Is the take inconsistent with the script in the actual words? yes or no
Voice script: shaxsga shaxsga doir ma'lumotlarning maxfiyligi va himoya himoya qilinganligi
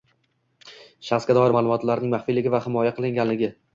yes